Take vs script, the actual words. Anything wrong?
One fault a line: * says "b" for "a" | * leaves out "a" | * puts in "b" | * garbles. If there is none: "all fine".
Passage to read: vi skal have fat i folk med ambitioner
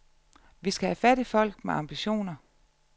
all fine